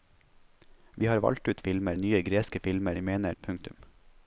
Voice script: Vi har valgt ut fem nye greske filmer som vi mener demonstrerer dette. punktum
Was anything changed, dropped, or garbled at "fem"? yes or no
yes